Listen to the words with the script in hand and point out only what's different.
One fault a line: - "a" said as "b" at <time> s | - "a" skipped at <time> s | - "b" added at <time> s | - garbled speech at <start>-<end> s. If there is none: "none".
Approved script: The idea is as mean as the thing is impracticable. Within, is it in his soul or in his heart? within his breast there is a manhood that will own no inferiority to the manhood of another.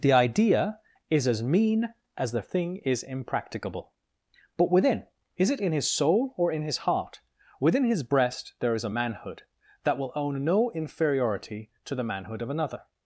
- "But" added at 4.6 s